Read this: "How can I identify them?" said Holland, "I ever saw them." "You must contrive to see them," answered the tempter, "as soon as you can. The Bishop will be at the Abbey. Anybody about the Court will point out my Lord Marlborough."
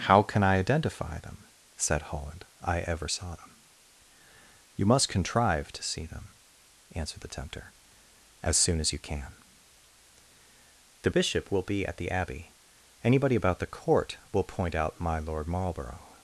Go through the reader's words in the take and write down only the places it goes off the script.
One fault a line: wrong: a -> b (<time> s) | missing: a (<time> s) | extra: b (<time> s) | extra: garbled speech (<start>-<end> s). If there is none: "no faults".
no faults